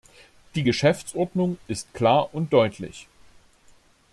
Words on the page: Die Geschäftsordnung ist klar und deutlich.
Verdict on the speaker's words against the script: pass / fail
pass